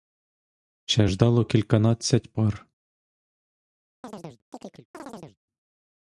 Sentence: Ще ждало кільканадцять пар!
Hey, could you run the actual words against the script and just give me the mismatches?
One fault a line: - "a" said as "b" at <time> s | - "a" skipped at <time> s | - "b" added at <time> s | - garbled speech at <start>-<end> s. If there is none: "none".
none